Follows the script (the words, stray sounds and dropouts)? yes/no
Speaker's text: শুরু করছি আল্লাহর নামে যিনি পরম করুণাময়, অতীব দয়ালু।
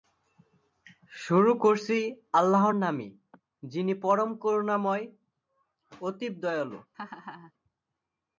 no